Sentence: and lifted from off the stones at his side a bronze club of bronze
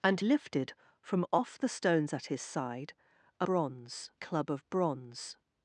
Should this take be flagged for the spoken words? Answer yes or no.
no